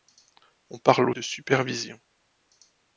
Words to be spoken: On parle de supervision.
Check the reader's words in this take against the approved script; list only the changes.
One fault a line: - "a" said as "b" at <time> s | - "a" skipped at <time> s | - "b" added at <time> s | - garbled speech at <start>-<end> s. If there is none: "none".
none